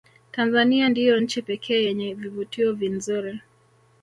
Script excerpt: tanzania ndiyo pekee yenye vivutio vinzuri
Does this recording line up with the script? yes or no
no